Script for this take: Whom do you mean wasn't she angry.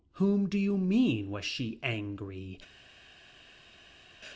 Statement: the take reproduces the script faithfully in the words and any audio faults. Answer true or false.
false